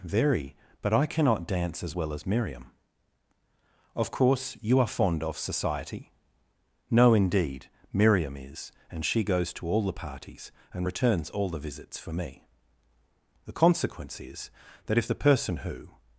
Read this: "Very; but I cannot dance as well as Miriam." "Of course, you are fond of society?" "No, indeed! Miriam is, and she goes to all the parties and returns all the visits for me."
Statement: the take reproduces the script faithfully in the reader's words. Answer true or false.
false